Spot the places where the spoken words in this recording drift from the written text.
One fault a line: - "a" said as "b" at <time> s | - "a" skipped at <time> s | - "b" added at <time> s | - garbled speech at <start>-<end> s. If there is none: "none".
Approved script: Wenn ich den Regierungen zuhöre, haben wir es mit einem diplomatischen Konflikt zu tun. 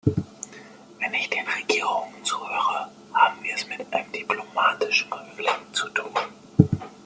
none